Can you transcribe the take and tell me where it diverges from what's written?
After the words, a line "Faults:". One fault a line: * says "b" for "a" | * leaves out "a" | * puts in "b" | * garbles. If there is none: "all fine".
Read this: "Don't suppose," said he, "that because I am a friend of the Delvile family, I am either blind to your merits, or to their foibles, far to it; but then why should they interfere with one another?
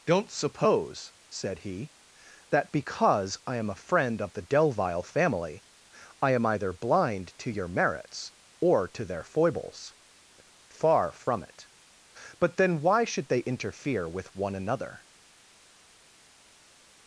"Don't suppose," said he, "that because I am a friend of the Delvile family, I am either blind to your merits, or to their foibles, far from it; but then why should they interfere with one another?
Faults:
* says "from" for "to"